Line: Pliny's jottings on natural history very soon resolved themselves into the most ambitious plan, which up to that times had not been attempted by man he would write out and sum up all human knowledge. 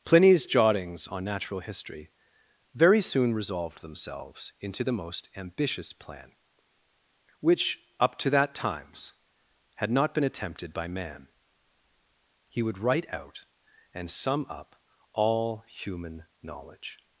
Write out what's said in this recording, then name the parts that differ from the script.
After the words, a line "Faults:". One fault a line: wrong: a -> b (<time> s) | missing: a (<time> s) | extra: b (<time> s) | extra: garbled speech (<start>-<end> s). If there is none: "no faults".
Pliny's jottings on natural history very soon resolved themselves into the most ambitious plan, which up to that times had not been attempted by man he would write out and sum up all human knowledge.
Faults:
no faults